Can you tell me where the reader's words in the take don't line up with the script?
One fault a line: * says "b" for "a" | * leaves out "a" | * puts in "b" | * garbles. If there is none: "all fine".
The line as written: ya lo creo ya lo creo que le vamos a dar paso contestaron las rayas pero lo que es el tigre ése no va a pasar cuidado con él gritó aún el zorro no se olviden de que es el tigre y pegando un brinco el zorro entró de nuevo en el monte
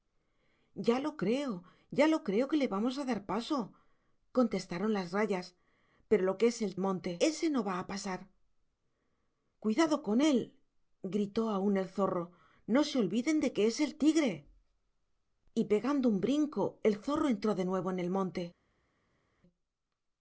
* says "monte" for "tigre"